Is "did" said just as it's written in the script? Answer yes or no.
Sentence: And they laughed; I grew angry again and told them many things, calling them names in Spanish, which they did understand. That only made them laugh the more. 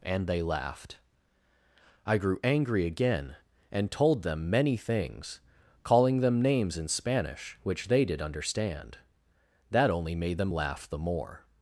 yes